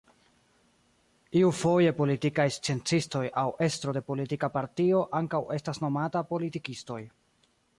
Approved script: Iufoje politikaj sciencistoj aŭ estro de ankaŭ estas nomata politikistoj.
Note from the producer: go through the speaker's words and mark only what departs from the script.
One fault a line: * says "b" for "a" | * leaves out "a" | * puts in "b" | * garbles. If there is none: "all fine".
* puts in "politika partio"